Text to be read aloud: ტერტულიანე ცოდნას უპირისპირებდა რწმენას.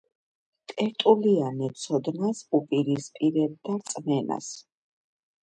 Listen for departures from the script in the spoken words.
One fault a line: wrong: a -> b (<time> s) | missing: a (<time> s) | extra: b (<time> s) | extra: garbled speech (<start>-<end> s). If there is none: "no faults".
no faults